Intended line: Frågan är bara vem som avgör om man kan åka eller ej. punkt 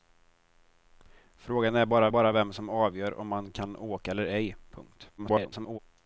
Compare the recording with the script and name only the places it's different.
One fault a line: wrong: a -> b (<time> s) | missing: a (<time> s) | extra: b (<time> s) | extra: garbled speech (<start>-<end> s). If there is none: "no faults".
extra: bara (2.1 s)
extra: garbled speech (5.2-5.8 s)